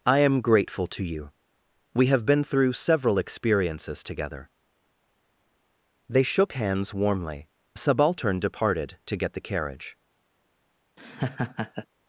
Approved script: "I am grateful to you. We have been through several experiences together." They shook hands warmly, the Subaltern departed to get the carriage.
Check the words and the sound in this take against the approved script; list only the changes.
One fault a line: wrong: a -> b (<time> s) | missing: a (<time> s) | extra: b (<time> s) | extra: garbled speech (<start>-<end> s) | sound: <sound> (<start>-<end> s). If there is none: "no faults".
sound: laugh (11.0-11.9 s)